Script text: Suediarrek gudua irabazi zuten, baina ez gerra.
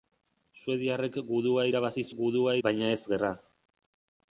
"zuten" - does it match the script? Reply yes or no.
no